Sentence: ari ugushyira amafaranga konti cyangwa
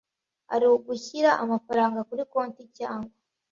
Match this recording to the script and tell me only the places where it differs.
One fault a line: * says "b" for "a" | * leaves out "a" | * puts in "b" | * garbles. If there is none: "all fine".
* puts in "kuri"